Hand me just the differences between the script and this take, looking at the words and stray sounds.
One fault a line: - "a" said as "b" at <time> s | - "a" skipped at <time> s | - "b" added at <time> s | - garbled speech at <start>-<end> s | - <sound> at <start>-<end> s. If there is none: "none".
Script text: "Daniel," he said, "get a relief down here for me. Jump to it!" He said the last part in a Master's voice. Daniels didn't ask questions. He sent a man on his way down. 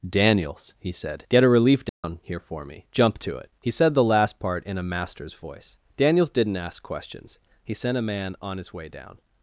- "Daniel" said as "Daniels" at 0.1 s
- dropout at 1.9-2.0 s